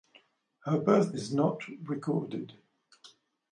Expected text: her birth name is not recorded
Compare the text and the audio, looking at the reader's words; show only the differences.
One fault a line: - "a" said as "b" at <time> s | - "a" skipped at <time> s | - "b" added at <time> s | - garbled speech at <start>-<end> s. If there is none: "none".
- "name" skipped at 1.1 s